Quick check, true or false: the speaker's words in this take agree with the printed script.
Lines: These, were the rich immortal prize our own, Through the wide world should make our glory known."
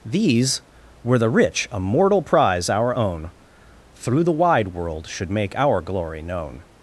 true